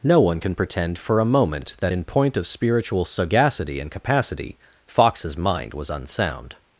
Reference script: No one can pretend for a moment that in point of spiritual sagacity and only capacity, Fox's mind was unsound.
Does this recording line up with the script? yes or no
no